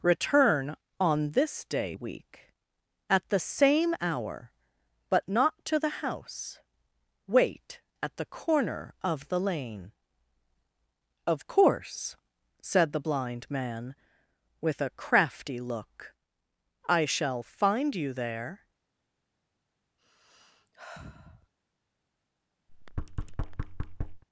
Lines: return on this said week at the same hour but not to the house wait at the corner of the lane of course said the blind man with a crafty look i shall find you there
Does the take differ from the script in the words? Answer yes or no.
yes